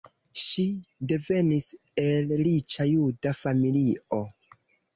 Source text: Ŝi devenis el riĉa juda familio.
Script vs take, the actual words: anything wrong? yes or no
no